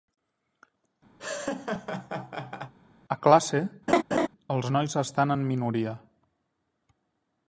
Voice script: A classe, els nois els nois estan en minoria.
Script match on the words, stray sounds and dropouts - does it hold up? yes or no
no